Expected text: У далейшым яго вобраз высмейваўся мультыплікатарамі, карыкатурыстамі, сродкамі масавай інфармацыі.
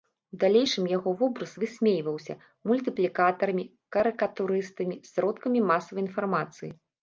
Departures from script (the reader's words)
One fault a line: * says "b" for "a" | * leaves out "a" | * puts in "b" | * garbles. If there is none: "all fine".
all fine